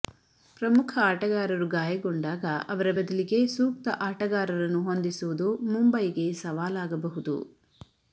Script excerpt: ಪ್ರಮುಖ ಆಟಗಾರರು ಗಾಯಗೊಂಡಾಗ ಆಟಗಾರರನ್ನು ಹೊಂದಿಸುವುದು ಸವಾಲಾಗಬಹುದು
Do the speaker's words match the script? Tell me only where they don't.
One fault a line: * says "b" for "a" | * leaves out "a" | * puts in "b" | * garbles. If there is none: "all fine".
* puts in "ಅವರ ಬದಲಿಗೆ ಸೂಕ್ತ"
* puts in "ಮುಂಬೈಗೆ"